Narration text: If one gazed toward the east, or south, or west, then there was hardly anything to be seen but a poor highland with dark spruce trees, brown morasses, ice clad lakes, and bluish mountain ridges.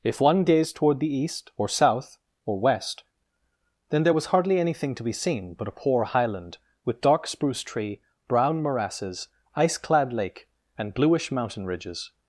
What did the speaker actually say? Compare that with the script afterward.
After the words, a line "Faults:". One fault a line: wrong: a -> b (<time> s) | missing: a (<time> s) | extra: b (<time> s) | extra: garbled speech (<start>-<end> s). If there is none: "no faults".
If one gazed toward the east, or south, or west, then there was hardly anything to be seen but a poor highland with dark spruce tree, brown morasses, ice clad lake, and bluish mountain ridges.
Faults:
wrong: trees -> tree (7.6 s)
wrong: lakes -> lake (10.1 s)